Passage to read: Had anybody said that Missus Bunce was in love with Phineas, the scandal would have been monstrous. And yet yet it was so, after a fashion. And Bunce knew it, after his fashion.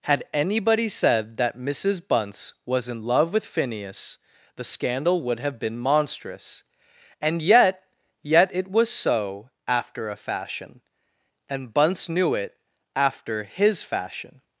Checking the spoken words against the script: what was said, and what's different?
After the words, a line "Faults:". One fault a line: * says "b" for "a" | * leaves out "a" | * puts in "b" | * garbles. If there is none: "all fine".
Had anybody said that Missus Bunce was in love with Phineas, the scandal would have been monstrous. And yet yet it was so, after a fashion. And Bunce knew it, after his fashion.
Faults:
all fine